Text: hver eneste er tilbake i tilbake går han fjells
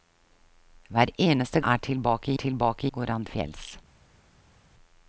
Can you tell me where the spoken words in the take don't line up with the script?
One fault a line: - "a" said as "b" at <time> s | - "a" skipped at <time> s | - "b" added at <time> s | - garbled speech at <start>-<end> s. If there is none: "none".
none